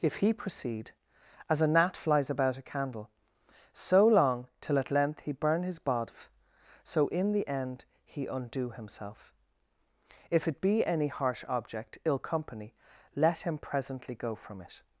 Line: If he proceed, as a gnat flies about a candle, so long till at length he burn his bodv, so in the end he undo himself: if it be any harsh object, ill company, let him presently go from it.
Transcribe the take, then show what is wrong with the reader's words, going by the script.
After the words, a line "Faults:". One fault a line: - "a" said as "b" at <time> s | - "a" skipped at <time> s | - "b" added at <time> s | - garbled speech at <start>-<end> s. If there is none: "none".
If he proceed, as a gnat flies about a candle, so long till at length he burn his bodv, so in the end he undo himself: if it be any harsh object, ill company, let him presently go from it.
Faults:
none